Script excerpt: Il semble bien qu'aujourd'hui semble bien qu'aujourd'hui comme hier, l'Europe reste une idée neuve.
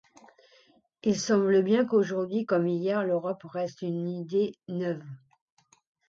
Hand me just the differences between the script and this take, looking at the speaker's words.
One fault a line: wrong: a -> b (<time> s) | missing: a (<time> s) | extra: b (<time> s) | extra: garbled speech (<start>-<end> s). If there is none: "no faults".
missing: semble bien qu'aujourd'hui (2.5 s)